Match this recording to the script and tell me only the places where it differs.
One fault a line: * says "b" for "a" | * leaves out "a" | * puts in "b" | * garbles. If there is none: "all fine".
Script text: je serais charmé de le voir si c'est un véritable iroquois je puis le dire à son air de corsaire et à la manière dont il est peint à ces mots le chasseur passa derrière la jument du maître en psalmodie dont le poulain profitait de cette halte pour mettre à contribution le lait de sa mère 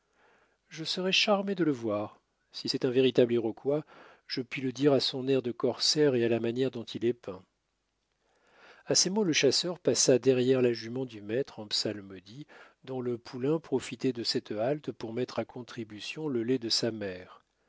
all fine